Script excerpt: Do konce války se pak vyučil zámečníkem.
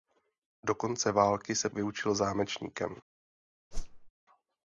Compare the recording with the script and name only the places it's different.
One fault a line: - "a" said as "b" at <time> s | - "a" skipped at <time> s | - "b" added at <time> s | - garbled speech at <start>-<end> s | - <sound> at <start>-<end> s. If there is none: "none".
- "pak" skipped at 1.7 s
- whoosh at 3.7-4.1 s